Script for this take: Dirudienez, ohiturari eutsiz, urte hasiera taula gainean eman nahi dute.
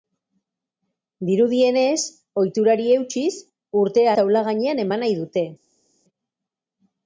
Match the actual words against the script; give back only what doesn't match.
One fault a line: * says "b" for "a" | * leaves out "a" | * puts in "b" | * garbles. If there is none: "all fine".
* leaves out "hasiera"